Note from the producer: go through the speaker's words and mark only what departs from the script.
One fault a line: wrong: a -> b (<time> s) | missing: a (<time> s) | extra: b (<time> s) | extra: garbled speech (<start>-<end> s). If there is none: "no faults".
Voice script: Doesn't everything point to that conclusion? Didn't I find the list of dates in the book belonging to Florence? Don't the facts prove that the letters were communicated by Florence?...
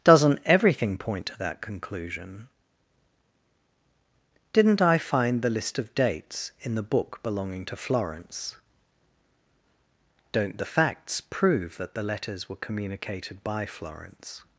no faults